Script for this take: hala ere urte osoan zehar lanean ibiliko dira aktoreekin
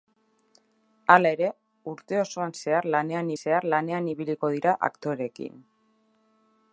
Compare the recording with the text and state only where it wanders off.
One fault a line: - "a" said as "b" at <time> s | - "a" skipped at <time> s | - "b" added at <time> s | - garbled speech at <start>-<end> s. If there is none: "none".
- "zehar lanean" added at 3.4 s